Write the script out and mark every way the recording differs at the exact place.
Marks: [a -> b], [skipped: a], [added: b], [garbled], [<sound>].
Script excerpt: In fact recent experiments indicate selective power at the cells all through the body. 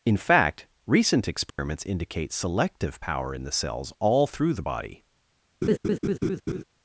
In fact recent experiments [dropout] indicate selective power [at -> in] the cells all through the body. [laugh]